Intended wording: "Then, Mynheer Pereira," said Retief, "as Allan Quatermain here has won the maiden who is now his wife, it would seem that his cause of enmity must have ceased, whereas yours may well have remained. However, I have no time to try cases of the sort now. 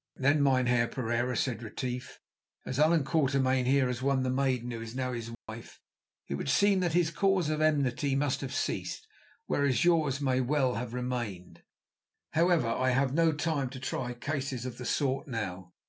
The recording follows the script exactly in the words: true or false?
true